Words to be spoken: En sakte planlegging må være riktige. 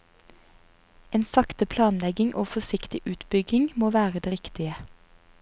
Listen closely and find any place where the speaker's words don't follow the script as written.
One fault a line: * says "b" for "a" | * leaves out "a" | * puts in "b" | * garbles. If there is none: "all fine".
* puts in "og forsiktig utbygging"
* puts in "det"